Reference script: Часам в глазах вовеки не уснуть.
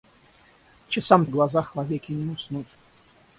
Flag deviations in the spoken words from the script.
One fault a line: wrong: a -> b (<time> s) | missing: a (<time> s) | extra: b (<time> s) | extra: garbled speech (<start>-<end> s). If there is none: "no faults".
no faults